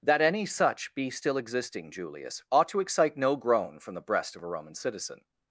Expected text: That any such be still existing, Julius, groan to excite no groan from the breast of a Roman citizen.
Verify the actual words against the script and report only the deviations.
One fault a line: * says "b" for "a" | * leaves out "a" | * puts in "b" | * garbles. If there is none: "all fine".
* says "ought" for "groan"